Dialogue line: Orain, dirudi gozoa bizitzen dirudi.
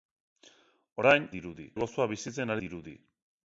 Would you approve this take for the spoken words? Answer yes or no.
yes